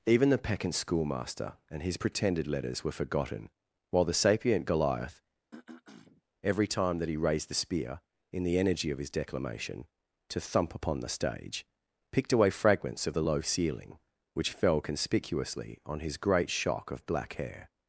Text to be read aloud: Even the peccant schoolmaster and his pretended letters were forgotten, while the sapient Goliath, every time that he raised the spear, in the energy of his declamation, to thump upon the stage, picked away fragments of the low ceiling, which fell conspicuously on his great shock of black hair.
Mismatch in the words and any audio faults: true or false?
true